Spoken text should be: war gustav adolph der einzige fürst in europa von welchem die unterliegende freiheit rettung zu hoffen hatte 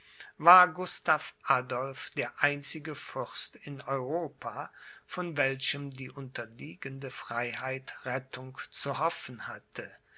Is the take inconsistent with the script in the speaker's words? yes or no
no